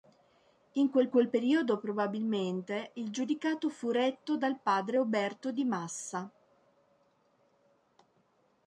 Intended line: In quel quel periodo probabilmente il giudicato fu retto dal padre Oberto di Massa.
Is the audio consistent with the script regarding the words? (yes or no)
yes